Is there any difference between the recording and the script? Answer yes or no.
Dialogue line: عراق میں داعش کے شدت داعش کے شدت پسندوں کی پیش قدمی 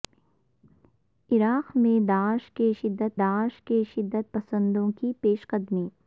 no